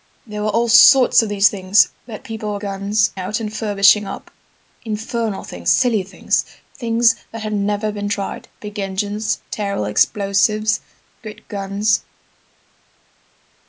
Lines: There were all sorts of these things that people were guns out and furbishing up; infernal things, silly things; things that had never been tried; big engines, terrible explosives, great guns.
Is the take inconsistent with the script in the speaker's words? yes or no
no